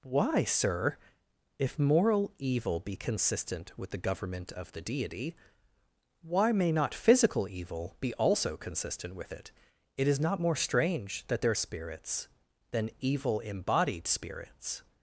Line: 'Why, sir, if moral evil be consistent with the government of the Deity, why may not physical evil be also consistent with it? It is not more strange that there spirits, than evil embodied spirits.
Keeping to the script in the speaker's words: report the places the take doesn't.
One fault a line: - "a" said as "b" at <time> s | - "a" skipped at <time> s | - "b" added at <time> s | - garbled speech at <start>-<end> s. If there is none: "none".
none